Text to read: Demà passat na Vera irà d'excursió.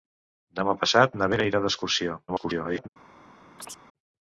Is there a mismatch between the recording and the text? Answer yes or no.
yes